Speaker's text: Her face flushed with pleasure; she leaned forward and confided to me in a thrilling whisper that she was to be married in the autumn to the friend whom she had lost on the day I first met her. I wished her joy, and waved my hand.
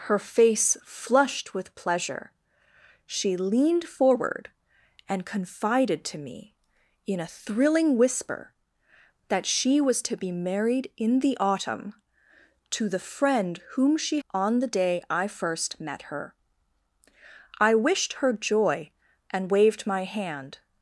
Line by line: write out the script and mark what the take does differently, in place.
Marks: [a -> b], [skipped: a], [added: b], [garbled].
Her face flushed with pleasure; she leaned forward and confided to me in a thrilling whisper that she was to be married in the autumn to the friend whom she [skipped: had lost] on the day I first met her. I wished her joy, and waved my hand.